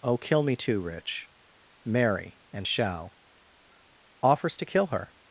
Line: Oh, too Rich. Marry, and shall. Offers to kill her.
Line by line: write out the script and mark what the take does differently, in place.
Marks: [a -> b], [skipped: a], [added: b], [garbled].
Oh, [added: kill me] too Rich. Marry, and shall. Offers to kill her.